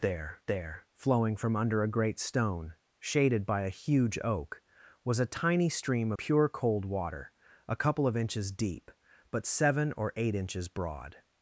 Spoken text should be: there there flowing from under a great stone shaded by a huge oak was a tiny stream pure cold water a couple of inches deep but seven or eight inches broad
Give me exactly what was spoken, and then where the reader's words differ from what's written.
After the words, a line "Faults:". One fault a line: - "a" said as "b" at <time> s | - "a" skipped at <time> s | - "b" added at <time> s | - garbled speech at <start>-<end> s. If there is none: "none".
there there flowing from under a great stone shaded by a huge oak was a tiny stream pure cold water a couple of inches deep but seven or eight inches broad
Faults:
none